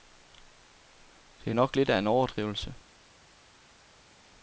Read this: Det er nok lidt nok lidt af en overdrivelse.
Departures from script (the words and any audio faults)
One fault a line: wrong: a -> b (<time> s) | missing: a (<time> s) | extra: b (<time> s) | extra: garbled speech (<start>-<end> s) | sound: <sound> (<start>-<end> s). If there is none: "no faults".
missing: nok lidt (1.9 s)